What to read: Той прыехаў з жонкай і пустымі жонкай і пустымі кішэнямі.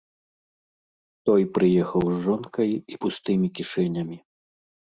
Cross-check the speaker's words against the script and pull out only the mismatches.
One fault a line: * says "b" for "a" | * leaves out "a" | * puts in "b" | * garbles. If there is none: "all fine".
* leaves out "жонкай і пустымі"